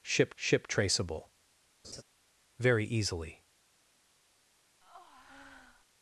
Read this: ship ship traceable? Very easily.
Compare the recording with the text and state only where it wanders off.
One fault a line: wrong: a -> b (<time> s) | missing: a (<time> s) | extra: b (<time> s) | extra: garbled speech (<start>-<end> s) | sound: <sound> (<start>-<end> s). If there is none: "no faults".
sound: laugh (1.8-2.0 s)
sound: breath (4.8-5.8 s)